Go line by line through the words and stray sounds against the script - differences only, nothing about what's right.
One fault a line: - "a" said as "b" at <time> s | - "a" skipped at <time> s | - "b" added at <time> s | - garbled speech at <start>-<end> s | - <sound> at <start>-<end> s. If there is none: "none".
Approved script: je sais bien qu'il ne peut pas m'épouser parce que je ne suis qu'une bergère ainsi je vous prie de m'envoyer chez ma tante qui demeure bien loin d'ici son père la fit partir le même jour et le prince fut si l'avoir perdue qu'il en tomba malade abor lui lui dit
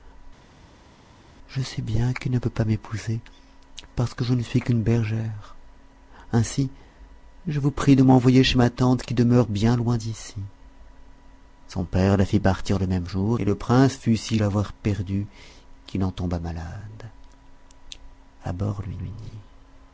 none